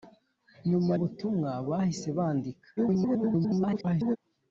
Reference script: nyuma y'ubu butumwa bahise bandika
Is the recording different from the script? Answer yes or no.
yes